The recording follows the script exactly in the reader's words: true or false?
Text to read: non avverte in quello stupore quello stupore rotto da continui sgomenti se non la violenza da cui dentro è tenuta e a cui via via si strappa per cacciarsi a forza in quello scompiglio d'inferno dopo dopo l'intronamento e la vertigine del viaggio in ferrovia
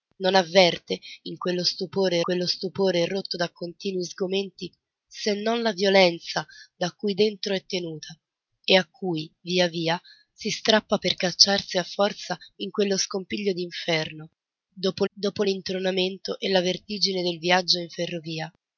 true